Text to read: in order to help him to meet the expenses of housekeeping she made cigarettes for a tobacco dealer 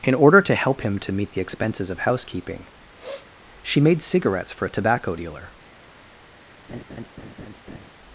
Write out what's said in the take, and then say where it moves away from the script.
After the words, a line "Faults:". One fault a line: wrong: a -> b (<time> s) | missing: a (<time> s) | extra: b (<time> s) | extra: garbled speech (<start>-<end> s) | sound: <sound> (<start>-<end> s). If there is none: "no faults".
in order to help him to meet the expenses of housekeeping she made cigarettes for a tobacco dealer
Faults:
sound: sniff (3.0-3.3 s)
sound: laugh (6.7-7.9 s)